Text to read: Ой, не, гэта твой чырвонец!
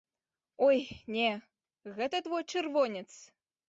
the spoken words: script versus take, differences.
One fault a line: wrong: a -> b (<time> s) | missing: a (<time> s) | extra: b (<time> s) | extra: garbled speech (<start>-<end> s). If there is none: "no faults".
no faults